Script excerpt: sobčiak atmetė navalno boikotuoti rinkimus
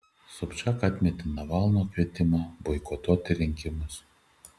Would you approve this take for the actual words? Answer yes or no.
no